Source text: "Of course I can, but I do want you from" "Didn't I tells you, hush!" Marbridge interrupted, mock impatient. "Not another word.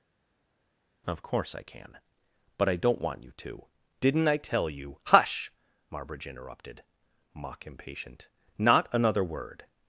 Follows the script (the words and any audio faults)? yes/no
no